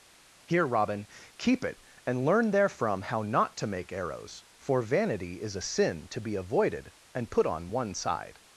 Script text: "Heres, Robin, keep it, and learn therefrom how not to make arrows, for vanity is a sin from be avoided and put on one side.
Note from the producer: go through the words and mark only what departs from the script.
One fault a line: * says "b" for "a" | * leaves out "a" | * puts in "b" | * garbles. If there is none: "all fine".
* says "Here" for "Heres"
* says "to" for "from"